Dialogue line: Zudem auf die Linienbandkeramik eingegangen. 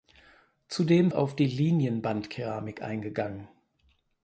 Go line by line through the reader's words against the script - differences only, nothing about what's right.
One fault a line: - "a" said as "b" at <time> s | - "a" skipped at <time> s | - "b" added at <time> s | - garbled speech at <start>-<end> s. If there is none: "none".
none